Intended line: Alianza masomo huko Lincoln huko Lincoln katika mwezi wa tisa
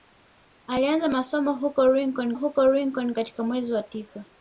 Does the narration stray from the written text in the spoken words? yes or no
no